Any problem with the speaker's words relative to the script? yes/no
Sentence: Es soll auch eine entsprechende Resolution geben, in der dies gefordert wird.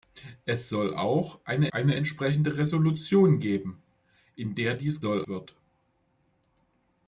yes